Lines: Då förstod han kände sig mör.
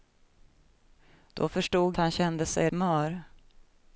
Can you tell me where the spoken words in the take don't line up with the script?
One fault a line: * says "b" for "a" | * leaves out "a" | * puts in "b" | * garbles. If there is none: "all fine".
all fine